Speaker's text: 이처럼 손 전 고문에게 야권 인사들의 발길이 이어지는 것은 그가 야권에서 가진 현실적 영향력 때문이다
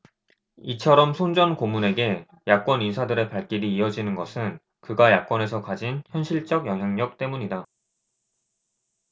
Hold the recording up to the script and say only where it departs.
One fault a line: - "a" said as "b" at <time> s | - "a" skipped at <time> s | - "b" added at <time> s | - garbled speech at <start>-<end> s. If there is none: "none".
none